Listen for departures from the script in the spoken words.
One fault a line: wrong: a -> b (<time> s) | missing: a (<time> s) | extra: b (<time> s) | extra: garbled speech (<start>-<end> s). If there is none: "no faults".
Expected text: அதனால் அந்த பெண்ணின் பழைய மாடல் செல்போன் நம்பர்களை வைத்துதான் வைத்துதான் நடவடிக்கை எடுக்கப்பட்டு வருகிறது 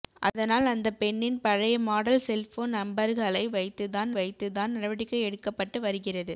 no faults